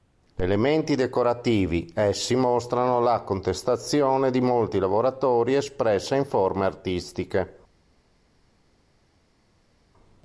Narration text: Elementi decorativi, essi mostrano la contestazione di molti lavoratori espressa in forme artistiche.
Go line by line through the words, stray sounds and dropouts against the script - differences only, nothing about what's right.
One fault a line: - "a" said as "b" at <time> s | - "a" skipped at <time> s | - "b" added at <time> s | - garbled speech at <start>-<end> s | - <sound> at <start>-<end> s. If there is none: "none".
none